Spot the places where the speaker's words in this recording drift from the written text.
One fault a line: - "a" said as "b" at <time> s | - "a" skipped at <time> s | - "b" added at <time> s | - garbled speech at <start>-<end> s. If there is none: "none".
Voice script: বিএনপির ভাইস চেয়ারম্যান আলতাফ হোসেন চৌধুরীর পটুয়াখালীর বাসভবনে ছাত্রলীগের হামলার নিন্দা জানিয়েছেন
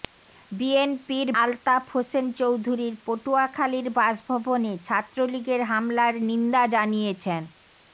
- "ভাইস চেয়ারম্যান" skipped at 1.3 s